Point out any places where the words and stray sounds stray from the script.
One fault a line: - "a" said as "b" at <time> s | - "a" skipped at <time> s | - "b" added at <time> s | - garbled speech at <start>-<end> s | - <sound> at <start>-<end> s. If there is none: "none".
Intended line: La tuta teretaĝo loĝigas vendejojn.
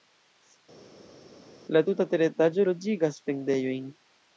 none